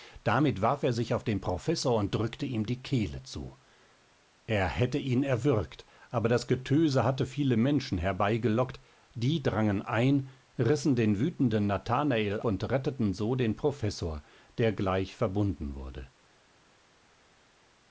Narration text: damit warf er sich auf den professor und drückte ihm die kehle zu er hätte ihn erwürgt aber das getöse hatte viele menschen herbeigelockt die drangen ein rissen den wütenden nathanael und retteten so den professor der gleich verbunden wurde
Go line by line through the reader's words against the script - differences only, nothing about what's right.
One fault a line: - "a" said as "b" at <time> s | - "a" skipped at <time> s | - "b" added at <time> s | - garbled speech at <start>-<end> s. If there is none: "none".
none